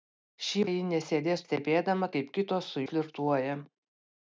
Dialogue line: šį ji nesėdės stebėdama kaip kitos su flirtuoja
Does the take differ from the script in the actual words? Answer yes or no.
no